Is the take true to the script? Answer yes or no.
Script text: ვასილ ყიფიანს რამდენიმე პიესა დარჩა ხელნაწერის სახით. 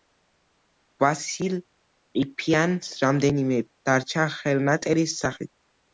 no